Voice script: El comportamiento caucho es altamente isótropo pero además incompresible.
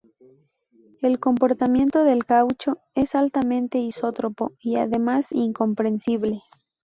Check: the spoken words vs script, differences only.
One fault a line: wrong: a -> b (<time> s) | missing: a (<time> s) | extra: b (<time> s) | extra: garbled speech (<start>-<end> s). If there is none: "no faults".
extra: del (2.0 s)
wrong: pero -> y (4.6 s)